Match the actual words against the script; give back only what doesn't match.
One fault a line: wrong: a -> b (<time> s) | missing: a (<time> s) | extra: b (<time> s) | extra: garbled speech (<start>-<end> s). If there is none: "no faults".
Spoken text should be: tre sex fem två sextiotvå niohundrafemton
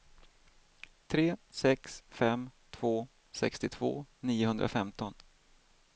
no faults